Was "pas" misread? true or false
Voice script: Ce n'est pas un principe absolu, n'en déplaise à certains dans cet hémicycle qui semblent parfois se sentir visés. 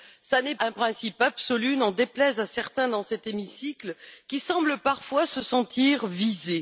true